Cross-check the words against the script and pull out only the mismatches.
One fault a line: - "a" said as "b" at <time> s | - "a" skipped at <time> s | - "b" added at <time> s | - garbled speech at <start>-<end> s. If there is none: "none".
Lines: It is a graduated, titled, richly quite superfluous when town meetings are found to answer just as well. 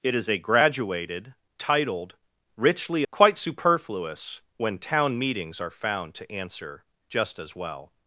none